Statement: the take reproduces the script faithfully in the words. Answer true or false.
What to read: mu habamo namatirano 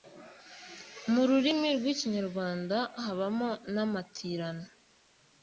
false